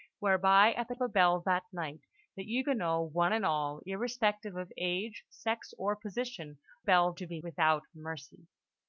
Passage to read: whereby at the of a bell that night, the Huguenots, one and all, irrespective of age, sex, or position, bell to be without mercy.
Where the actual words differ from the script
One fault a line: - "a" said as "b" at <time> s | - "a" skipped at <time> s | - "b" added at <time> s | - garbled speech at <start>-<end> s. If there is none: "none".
none